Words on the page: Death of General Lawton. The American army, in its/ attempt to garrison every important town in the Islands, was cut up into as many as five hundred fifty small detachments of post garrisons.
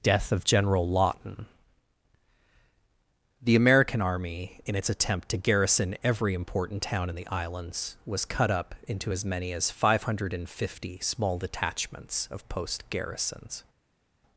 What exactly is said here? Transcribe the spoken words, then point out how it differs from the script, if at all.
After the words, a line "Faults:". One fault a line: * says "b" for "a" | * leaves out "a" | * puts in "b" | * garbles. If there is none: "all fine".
Death of General Lawton. The American army, in its/ attempt to garrison every important town in the Islands, was cut up into as many as five hundred fifty small detachments of post garrisons.
Faults:
all fine